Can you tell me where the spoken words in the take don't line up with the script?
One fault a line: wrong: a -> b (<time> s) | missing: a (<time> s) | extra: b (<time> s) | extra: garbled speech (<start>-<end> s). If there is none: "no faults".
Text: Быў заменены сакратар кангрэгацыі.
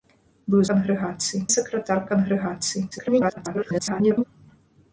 wrong: заменены -> кангрэгацыі (0.7 s)
extra: garbled speech (2.9-4.2 s)